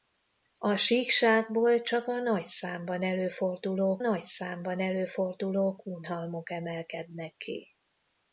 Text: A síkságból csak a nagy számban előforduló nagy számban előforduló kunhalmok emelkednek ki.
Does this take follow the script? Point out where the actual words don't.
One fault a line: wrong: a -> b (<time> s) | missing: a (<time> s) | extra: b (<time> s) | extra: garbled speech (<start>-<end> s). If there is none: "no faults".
no faults